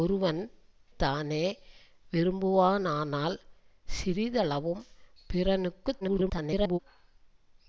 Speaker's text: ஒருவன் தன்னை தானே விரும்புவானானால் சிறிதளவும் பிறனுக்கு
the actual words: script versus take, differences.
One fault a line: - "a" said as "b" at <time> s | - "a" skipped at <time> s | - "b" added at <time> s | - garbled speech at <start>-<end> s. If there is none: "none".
- "தன்னை" skipped at 0.4 s
- garbled speech at 6.0-6.8 s